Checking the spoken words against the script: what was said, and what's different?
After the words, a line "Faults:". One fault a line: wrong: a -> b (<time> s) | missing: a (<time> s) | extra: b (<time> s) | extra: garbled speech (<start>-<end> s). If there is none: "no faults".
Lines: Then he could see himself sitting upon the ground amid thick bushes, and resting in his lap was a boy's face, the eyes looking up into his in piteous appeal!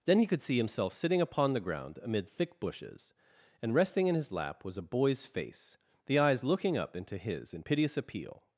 Then he could see himself sitting upon the ground amid thick bushes, and resting in his lap was a boy's face, the eyes looking up into his in piteous appeal!
Faults:
no faults